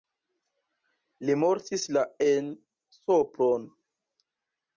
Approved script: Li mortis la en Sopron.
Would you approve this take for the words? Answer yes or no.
yes